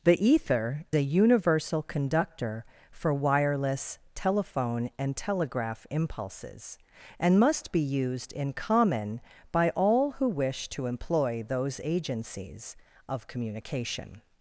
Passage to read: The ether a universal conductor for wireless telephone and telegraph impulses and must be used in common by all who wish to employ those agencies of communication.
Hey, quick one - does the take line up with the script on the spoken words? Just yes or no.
yes